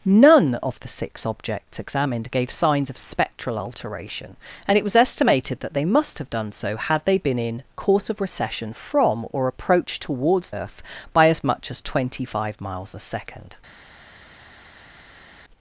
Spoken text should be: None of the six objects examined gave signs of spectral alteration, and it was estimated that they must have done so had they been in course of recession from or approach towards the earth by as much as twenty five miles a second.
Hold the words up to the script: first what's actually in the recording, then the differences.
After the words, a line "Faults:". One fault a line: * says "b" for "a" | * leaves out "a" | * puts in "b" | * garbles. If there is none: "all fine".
None of the six objects examined gave signs of spectral alteration, and it was estimated that they must have done so had they been in course of recession from or approach towards earth by as much as twenty five miles a second.
Faults:
* leaves out "the"